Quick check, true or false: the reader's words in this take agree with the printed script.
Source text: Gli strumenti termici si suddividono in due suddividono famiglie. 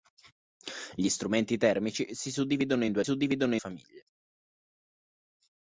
true